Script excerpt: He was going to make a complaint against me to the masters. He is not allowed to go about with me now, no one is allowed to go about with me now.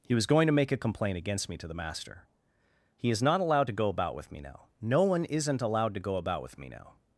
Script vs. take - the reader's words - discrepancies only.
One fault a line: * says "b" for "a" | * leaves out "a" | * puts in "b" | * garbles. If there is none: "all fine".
* says "master" for "masters"
* says "isn't" for "is"